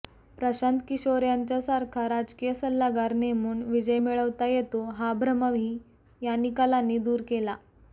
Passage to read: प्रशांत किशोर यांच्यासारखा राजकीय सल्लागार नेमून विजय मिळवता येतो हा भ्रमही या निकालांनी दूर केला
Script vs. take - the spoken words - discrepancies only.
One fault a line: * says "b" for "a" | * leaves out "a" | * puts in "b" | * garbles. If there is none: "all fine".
all fine